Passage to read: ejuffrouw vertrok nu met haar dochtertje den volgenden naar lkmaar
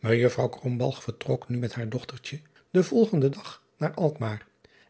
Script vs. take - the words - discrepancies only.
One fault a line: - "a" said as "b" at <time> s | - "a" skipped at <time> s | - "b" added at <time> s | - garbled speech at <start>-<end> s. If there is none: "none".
- "dag" added at 3.3 s